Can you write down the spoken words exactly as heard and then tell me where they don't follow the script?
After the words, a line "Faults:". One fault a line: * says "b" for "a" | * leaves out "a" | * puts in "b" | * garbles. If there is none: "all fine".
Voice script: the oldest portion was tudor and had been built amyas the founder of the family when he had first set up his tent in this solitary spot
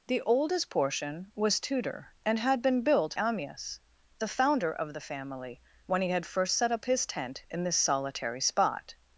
the oldest portion was tudor and had been built amyas the founder of the family when he had first set up his tent in this solitary spot
Faults:
all fine